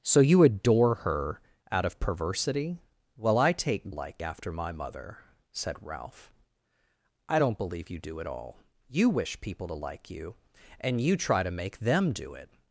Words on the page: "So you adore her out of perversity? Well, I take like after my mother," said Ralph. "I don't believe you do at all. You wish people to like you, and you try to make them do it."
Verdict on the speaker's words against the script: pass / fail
pass